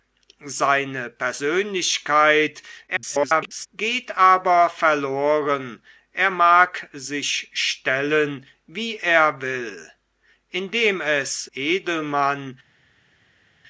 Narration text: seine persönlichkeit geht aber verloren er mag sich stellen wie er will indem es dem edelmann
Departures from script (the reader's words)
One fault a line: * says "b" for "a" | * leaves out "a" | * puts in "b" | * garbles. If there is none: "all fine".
* garbles
* leaves out "dem"